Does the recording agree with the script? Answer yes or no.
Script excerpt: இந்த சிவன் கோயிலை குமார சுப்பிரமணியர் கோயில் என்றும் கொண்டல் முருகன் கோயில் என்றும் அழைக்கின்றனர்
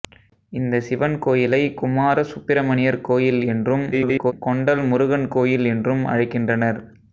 no